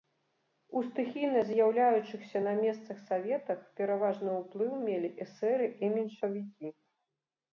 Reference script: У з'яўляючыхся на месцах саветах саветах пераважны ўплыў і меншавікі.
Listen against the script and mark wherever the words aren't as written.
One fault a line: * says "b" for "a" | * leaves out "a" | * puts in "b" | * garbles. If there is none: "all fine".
* puts in "стыхійна"
* leaves out "саветах"
* puts in "мелі эсэры"